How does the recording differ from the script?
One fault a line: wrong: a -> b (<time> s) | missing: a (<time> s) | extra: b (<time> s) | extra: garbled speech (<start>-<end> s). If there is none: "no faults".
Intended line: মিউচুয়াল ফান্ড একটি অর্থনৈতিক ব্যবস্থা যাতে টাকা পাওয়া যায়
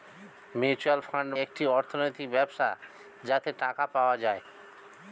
no faults